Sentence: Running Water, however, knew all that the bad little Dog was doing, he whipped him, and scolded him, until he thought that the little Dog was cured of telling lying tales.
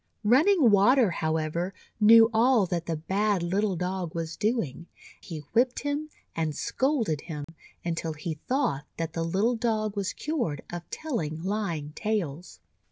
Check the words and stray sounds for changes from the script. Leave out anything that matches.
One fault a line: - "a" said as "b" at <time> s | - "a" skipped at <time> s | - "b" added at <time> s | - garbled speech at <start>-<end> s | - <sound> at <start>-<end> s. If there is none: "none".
- dropout at 7.4-7.5 s